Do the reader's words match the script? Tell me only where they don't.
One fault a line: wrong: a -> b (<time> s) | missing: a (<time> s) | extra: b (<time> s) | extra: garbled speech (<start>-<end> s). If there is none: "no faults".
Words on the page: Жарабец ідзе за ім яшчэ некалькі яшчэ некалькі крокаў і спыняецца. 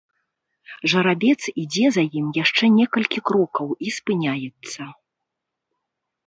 missing: яшчэ некалькі (3.2 s)